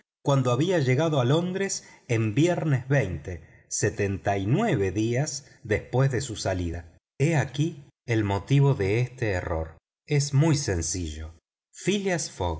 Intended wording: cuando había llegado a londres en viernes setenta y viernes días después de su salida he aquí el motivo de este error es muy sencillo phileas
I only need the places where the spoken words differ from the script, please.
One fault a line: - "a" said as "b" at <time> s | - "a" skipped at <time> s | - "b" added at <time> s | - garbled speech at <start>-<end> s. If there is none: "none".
- "viernes" said as "nueve" at 4.5 s